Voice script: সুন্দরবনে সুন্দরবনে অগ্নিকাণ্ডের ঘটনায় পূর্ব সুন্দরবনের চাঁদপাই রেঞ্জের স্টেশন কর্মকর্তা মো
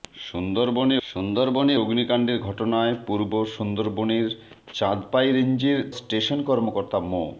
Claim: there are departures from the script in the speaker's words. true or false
false